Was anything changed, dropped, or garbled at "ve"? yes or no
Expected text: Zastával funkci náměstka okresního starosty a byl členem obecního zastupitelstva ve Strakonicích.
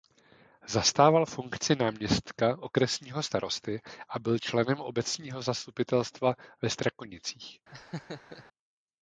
no